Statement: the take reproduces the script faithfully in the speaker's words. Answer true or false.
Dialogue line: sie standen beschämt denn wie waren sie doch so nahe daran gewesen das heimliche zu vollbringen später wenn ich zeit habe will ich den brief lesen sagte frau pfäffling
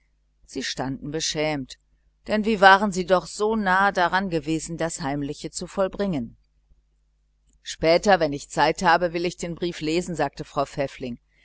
true